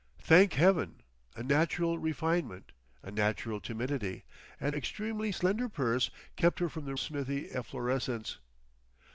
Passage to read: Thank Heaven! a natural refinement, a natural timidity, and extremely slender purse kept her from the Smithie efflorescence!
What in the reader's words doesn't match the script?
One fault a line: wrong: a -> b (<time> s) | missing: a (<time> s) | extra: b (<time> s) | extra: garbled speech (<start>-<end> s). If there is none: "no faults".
no faults